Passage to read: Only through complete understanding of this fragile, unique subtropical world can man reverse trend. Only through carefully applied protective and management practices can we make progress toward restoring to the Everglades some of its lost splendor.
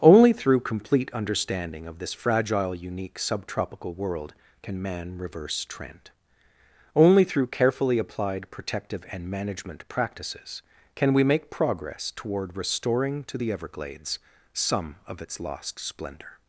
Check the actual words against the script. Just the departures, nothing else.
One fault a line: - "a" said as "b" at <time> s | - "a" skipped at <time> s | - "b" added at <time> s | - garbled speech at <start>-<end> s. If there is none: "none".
none